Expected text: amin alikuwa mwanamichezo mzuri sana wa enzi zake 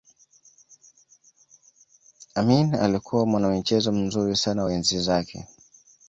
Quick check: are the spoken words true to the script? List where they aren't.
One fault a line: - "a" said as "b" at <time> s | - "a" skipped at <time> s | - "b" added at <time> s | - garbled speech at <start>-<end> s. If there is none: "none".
none